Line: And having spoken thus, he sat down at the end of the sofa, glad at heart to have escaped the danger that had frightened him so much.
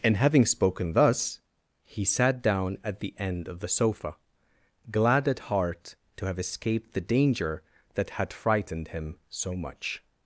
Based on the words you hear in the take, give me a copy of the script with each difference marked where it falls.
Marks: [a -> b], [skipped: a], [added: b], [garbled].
And having spoken thus, he sat down at the end of the sofa, glad at heart to have escaped the danger that had frightened him so much.